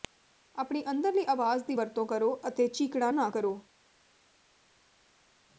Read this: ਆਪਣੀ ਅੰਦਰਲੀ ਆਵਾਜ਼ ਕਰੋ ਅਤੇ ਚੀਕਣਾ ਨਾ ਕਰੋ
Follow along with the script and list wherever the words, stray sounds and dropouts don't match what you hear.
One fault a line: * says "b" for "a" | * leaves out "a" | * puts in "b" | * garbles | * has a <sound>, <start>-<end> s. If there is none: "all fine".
* puts in "ਦੀ ਵਰਤੋਂ"